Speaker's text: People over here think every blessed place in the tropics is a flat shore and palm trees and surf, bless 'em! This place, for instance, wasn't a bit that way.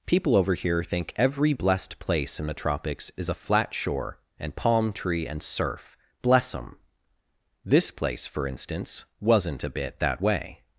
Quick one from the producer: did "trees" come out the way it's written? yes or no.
no